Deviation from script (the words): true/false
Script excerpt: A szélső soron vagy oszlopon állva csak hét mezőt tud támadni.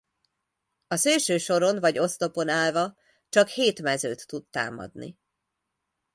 false